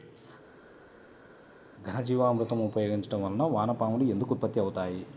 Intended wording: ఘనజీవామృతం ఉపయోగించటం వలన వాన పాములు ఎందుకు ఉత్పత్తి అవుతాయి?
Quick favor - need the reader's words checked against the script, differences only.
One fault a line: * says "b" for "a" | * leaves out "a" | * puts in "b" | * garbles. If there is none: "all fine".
all fine